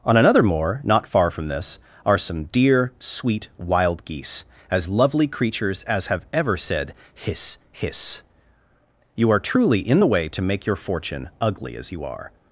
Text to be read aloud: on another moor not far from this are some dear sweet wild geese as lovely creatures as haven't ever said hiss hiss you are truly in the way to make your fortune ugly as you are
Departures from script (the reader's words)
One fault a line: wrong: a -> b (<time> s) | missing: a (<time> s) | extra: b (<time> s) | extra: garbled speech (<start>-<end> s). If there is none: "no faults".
wrong: haven't -> have (6.1 s)